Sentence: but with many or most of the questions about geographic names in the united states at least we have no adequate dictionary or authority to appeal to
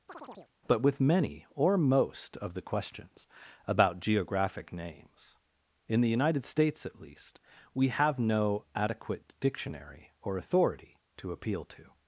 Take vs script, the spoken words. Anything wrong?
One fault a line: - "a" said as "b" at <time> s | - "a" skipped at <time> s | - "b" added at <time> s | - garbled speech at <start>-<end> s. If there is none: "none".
none